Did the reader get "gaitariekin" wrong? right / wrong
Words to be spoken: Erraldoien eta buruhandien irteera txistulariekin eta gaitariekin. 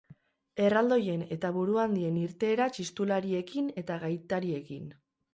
right